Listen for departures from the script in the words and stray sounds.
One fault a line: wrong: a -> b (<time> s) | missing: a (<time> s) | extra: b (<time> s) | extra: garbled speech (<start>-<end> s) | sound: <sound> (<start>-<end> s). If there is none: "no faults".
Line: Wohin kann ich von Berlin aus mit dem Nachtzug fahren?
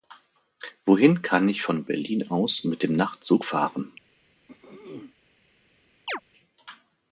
sound: throat clearing (4.5-5.1 s)
sound: chirp (6.1-6.2 s)